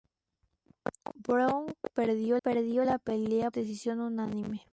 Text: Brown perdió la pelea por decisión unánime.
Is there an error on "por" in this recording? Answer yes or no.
yes